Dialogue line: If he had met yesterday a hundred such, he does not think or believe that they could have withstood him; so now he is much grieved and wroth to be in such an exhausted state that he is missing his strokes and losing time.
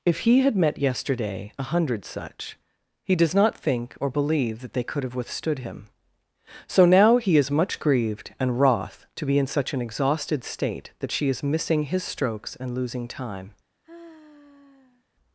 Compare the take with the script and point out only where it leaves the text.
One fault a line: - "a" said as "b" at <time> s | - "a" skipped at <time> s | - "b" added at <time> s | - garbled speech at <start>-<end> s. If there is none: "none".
- "he" said as "she" at 11.1 s